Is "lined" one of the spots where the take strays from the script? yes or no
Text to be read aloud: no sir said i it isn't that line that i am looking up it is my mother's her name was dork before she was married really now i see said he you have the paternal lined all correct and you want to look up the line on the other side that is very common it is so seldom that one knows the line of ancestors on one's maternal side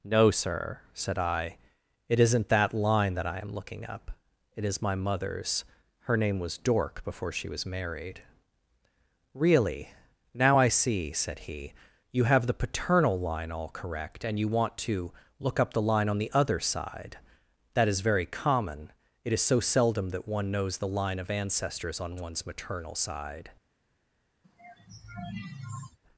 yes